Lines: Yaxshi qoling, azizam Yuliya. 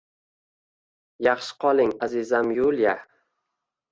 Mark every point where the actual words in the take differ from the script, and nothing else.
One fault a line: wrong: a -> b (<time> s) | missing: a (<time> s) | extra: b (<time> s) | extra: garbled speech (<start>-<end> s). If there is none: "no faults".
no faults